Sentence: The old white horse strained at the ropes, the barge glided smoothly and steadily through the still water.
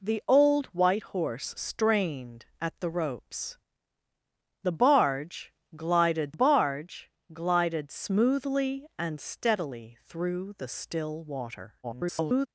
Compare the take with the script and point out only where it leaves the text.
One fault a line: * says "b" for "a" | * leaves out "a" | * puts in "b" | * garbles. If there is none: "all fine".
* puts in "barge glided"
* garbles